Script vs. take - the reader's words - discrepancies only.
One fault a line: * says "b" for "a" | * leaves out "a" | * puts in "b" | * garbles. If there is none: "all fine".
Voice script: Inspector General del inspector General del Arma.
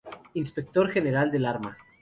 * leaves out "inspector General del"